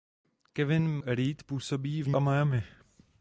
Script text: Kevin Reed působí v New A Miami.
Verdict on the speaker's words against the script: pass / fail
pass